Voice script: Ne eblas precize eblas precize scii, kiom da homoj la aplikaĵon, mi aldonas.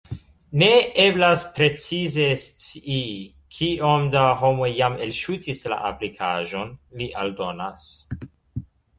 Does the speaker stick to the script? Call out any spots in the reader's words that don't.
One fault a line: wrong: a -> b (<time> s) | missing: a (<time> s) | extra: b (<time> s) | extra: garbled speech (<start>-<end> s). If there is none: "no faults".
missing: eblas precize (2.3 s)
extra: jam elŝutis (4.8 s)
wrong: mi -> li (7.0 s)